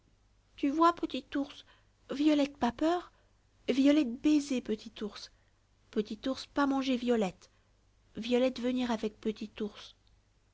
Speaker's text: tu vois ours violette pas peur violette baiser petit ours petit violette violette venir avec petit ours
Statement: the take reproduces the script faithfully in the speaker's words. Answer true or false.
false